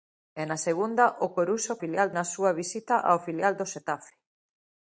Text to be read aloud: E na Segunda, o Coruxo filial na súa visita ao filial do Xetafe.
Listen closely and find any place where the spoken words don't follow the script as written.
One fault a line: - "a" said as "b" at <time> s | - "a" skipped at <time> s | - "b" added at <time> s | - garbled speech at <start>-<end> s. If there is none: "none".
none